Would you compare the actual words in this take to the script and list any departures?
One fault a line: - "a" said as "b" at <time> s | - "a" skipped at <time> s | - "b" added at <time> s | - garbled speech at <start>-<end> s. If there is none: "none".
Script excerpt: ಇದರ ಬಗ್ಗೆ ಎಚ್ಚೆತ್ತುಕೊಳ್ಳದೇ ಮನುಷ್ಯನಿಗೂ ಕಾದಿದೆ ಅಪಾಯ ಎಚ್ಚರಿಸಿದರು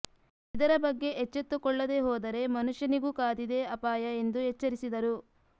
- "ಹೋದರೆ" added at 2.0 s
- "ಎಂದು" added at 4.2 s